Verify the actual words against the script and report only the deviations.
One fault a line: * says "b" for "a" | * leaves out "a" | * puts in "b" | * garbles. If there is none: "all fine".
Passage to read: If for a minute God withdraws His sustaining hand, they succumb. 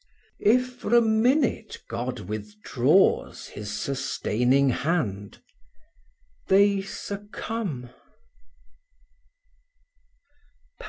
all fine